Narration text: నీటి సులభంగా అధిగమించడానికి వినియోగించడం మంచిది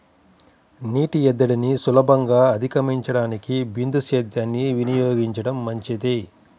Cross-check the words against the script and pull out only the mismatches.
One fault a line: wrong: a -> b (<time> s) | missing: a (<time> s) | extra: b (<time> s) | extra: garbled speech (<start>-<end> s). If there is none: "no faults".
extra: ఎద్దడిని (1.3 s)
extra: బిందు సేద్యాన్ని (3.8 s)